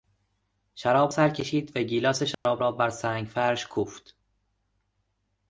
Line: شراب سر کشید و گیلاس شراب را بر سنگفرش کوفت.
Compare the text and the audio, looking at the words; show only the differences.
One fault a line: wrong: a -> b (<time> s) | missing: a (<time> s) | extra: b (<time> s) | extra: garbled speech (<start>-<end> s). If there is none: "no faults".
no faults